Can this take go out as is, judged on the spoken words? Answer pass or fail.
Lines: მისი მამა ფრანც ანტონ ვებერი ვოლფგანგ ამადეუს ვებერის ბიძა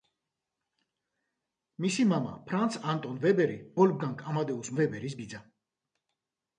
pass